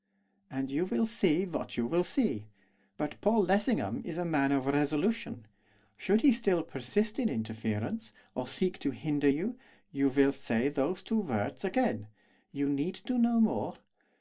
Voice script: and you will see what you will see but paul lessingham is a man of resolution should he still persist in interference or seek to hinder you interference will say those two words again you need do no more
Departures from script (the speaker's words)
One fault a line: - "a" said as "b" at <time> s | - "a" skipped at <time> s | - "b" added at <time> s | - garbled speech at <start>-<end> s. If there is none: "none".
- "interference" said as "you" at 9.9 s